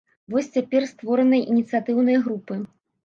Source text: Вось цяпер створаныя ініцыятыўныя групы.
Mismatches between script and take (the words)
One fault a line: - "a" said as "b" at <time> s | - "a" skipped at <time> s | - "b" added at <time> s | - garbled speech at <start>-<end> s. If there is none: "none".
none